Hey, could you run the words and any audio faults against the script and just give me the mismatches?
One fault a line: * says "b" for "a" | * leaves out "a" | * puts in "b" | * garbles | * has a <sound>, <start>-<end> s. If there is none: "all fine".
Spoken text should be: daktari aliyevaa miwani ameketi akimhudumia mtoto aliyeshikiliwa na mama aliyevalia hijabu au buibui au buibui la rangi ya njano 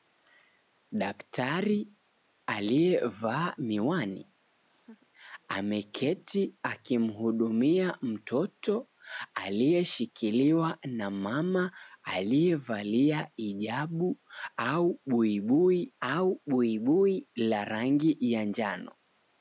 * has a laugh, 4.6-5.1 s